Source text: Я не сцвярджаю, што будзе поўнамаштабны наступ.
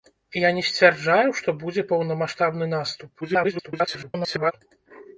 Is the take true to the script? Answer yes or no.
no